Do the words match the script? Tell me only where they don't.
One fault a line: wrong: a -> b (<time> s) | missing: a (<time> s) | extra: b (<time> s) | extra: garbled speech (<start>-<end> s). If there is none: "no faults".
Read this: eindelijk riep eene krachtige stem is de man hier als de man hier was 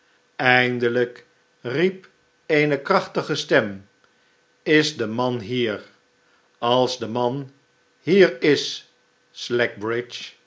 wrong: was -> is (8.4 s)